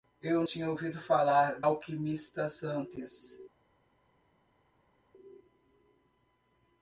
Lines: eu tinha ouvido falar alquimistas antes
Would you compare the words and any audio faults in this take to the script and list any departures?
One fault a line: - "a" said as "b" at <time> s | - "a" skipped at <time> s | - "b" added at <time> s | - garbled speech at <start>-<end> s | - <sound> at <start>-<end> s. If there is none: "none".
none